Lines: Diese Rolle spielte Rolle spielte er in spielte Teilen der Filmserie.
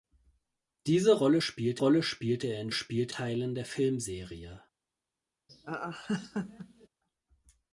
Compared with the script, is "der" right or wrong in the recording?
right